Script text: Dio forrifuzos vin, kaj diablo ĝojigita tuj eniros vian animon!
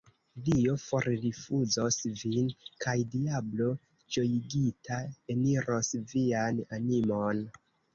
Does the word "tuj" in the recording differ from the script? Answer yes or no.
yes